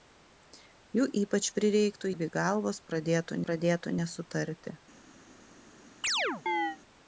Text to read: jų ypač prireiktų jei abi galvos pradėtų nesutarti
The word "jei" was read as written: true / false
false